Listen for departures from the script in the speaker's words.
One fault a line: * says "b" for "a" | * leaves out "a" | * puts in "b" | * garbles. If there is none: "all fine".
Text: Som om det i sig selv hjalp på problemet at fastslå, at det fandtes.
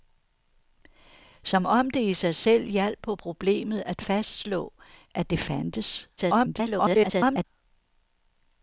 * garbles